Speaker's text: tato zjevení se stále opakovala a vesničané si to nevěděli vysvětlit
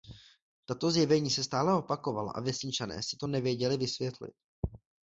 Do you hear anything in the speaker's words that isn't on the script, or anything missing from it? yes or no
no